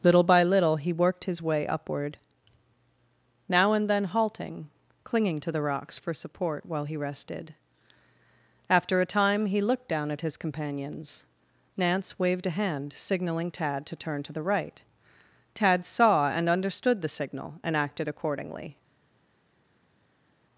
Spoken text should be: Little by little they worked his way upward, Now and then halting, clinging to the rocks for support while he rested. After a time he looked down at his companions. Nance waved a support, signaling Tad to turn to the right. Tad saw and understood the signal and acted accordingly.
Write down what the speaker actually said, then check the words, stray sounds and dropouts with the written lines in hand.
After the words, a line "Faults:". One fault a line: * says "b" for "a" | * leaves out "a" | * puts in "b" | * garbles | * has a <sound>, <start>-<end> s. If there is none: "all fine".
Little by little he worked his way upward, Now and then halting, clinging to the rocks for support while he rested. After a time he looked down at his companions. Nance waved a hand, signaling Tad to turn to the right. Tad saw and understood the signal and acted accordingly.
Faults:
* says "he" for "they"
* says "hand" for "support"